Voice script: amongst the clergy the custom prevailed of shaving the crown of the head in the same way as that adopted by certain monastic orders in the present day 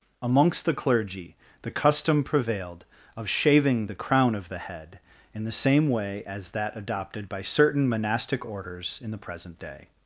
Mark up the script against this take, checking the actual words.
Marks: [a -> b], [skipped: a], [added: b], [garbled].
amongst the clergy the custom prevailed of shaving the crown of the head in the same way as that adopted by certain monastic orders in the present day